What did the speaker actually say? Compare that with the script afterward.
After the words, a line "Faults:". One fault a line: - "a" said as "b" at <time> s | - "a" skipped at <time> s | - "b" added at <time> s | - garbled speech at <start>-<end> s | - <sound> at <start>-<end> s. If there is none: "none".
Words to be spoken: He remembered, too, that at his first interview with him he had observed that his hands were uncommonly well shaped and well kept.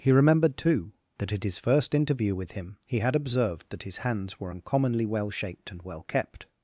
He remembered, too, that at his first interview with him he had observed that his hands were uncommonly well shaped and well kept.
Faults:
none